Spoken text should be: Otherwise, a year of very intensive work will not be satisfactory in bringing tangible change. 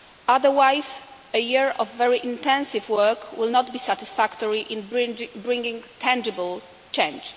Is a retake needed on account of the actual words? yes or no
no